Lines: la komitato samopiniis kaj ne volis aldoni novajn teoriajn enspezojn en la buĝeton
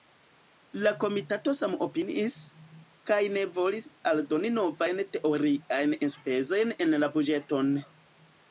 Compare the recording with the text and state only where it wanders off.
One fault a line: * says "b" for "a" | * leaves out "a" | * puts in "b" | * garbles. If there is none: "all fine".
all fine